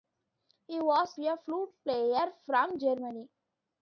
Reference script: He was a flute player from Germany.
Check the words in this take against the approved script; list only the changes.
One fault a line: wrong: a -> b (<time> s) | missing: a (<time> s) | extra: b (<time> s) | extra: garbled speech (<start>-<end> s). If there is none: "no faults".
no faults